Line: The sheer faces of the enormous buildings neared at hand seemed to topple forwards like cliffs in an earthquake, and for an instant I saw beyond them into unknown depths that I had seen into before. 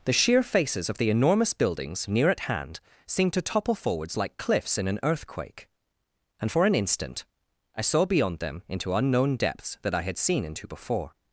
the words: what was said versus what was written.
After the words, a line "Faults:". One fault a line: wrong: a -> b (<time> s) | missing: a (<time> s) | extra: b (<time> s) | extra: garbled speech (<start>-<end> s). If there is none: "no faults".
The sheer faces of the enormous buildings near at hand seemed to topple forwards like cliffs in an earthquake, and for an instant I saw beyond them into unknown depths that I had seen into before.
Faults:
wrong: neared -> near (2.1 s)